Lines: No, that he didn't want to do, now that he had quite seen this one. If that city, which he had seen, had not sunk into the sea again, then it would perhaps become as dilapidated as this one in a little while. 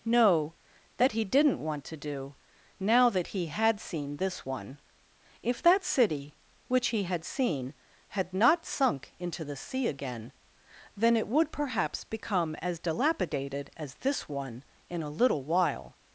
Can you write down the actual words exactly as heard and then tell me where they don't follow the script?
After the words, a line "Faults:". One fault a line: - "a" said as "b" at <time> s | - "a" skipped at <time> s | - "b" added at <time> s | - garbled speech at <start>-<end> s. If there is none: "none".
No, that he didn't want to do, now that he had seen this one. If that city, which he had seen, had not sunk into the sea again, then it would perhaps become as dilapidated as this one in a little while.
Faults:
- "quite" skipped at 3.8 s